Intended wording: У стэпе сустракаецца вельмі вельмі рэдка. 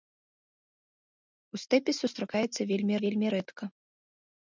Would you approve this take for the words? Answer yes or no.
yes